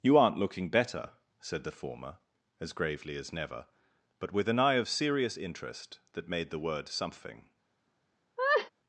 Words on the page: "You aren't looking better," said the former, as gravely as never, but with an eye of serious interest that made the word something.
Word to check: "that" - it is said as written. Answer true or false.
true